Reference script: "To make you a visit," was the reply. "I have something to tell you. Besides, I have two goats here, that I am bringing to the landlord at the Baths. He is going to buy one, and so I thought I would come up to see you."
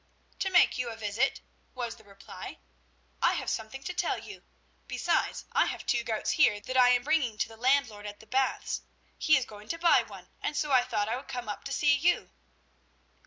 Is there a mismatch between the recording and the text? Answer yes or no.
no